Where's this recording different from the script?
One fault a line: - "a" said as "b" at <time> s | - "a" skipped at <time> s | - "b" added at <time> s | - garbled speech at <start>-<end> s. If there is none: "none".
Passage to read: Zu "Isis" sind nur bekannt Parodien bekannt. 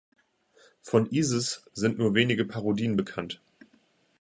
- "Zu" said as "Von" at 0.8 s
- "bekannt" said as "wenige" at 2.1 s